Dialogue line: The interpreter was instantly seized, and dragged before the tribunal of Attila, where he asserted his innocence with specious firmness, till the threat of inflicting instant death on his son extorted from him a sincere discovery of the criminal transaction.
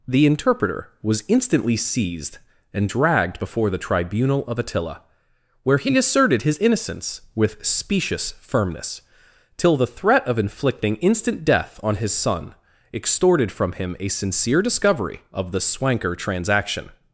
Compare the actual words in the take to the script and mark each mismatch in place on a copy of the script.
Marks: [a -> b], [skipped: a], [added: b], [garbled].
The interpreter was instantly seized, and dragged before the tribunal of Attila, where he asserted his innocence with specious firmness, till the threat of inflicting instant death on his son extorted from him a sincere discovery of the [criminal -> swanker] transaction.